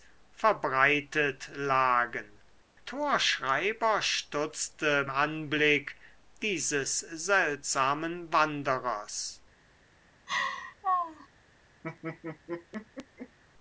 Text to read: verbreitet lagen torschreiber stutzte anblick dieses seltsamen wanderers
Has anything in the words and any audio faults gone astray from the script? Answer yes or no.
yes